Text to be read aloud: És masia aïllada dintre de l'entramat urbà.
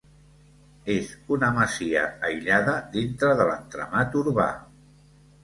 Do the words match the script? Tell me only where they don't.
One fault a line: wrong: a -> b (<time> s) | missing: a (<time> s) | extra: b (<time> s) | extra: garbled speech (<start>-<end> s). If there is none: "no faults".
extra: una (1.4 s)